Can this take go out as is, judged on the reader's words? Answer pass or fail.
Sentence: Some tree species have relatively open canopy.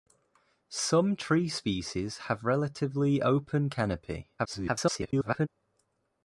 fail